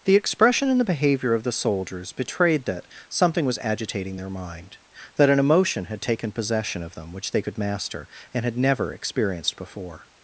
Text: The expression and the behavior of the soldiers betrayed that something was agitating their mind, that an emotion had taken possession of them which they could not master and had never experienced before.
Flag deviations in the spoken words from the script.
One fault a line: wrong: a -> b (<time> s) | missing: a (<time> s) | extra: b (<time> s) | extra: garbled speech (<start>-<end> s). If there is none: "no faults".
missing: not (7.6 s)